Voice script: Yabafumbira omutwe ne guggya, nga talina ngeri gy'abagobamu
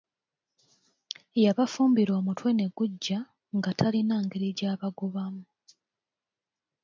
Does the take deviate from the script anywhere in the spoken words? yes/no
no